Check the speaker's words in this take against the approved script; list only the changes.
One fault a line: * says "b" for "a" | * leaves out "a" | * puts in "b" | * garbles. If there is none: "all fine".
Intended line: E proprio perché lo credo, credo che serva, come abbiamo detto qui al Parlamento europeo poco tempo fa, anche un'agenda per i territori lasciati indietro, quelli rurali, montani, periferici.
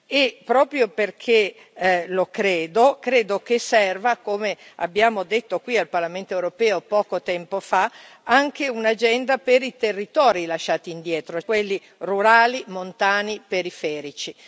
all fine